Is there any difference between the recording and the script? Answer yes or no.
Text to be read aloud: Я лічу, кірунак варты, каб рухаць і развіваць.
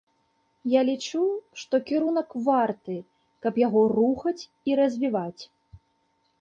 yes